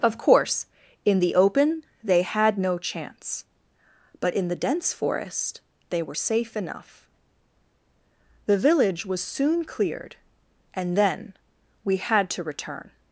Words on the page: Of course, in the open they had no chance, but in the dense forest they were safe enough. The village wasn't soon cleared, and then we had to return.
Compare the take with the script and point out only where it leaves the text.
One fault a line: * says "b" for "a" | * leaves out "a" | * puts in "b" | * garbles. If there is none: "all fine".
* says "was" for "wasn't"